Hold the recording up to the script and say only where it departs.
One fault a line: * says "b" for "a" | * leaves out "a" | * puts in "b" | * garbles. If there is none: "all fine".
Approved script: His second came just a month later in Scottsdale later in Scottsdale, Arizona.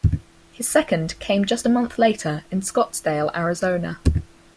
* leaves out "later in Scottsdale"